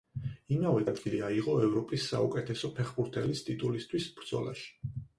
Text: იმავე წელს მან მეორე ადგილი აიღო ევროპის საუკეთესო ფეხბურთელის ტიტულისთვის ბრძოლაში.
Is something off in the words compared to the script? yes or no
yes